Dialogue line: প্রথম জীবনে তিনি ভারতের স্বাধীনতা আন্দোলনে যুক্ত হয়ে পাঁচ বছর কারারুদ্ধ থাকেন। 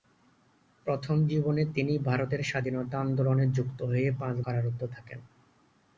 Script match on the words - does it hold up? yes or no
no